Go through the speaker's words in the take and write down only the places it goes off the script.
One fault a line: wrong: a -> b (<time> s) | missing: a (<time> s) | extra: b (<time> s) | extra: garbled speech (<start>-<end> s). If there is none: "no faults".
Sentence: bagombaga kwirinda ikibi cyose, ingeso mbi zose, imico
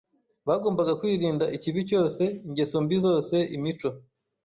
no faults